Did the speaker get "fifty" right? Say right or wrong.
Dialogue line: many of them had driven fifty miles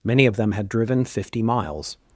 right